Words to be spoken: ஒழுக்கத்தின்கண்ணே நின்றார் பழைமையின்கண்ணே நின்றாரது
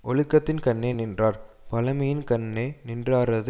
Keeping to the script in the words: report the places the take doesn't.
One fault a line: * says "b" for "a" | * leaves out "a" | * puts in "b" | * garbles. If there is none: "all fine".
all fine